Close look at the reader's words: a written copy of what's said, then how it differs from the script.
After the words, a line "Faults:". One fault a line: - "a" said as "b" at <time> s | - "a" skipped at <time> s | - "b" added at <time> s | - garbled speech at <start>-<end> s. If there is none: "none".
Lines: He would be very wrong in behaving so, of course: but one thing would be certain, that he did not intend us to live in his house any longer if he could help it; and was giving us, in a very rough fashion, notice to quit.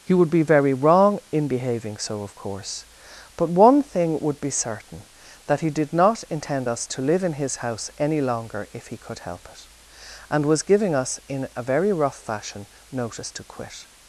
He would be very wrong in behaving so, of course: but one thing would be certain, that he did not intend us to live in his house any longer if he could help it; and was giving us, in a very rough fashion, notice to quit.
Faults:
none